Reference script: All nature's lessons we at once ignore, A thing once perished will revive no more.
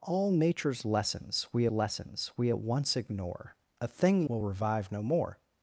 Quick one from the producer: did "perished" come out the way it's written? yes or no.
no